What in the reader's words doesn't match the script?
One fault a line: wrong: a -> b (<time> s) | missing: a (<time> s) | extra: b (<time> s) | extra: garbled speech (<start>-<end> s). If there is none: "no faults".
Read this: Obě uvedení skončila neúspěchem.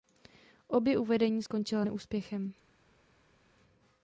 no faults